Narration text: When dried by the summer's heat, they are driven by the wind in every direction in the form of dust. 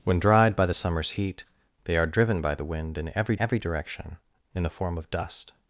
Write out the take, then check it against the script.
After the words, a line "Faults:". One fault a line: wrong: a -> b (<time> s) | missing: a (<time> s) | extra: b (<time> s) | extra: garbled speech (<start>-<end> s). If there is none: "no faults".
When dried by the summer's heat, they are driven by the wind in every every direction in the form of dust.
Faults:
extra: every (3.4 s)